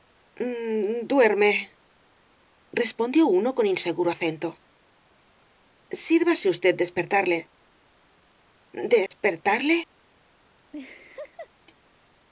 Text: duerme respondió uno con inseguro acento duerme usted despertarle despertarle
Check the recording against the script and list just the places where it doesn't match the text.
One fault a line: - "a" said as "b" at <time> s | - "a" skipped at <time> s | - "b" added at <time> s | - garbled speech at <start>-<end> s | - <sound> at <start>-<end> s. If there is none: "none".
- "duerme" said as "sírvase" at 6.1 s
- dropout at 9.1-9.1 s
- laugh at 10.7-11.5 s